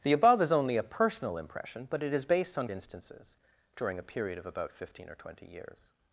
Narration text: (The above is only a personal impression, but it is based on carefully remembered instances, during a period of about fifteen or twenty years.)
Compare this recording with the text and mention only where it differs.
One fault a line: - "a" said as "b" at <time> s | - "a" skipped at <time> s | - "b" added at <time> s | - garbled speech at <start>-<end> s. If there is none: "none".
- "carefully remembered" skipped at 2.7 s